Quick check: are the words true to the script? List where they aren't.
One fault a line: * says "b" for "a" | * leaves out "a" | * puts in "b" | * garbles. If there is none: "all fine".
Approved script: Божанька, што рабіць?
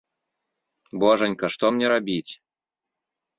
* puts in "мне"